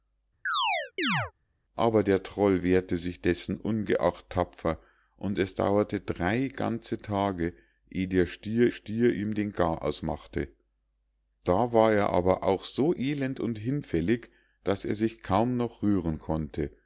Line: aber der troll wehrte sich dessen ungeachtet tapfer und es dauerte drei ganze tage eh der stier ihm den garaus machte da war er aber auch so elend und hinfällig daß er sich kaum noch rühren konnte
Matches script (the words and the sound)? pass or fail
fail